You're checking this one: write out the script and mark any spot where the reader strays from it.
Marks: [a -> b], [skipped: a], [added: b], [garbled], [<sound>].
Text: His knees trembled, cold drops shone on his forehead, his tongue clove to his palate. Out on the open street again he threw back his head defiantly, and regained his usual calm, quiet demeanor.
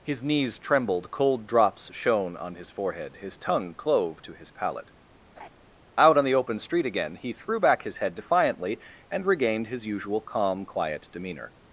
His knees trembled, cold drops shone on his forehead, his tongue clove to his palate. [laugh] Out on the open street again he threw back his head defiantly, and regained his usual calm, quiet demeanor.